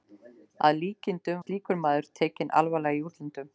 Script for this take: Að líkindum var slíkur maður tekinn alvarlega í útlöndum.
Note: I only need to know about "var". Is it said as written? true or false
false